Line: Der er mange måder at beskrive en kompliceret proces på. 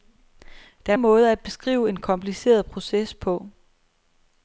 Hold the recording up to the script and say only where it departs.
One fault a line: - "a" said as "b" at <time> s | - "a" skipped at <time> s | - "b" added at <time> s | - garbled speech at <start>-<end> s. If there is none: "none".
- "mange" skipped at 1.0 s